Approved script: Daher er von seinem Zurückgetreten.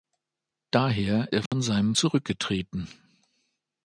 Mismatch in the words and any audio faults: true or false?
true